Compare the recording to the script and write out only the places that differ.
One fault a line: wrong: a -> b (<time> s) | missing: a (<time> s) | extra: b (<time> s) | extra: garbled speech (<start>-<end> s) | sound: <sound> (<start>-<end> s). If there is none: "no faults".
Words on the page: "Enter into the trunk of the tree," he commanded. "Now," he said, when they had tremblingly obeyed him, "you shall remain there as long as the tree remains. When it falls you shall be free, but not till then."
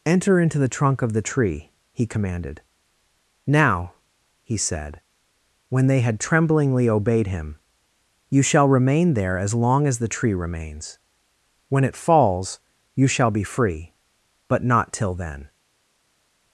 no faults